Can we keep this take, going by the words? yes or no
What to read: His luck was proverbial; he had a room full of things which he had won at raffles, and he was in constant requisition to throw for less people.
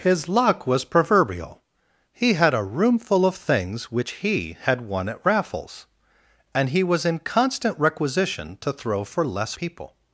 yes